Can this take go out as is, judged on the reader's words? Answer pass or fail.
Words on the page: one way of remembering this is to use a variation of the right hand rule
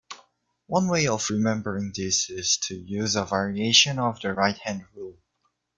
pass